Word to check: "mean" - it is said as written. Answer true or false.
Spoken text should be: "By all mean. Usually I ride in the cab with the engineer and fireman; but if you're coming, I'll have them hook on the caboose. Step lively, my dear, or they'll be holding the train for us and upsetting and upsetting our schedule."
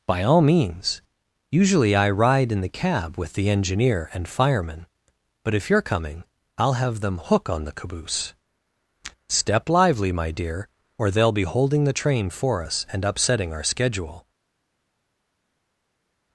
false